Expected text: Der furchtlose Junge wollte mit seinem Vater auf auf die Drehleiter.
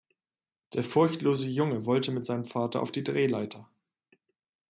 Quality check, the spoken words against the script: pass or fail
fail